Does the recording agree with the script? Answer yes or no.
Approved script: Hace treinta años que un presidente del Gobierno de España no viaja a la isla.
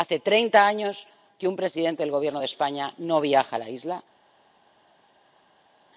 yes